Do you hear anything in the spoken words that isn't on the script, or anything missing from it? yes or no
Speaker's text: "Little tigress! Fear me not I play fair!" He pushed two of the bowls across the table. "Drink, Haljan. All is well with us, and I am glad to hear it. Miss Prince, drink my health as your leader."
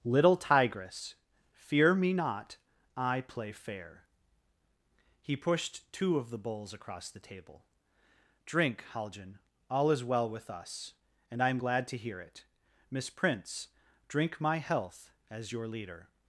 no